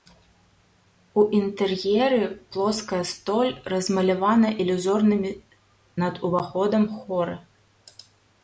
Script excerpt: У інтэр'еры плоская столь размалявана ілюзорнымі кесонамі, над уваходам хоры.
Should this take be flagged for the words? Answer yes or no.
yes